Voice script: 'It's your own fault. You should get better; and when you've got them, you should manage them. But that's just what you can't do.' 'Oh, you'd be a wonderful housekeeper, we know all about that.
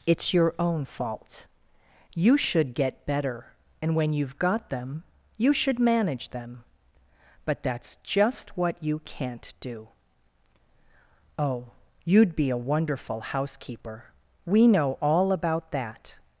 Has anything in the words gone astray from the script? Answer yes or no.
no